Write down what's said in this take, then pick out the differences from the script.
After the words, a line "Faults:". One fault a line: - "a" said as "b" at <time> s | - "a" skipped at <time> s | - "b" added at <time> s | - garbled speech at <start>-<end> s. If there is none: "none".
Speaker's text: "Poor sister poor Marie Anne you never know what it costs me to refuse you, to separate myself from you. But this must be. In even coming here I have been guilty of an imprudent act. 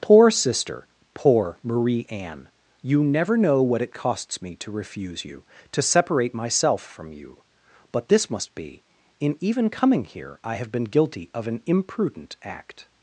"Poor sister poor Marie Anne you never know what it costs me to refuse you, to separate myself from you. But this must be. In even coming here I have been guilty of an imprudent act.
Faults:
none